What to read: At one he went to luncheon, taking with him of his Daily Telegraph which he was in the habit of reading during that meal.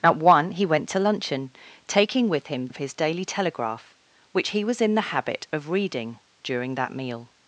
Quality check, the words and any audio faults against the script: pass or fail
pass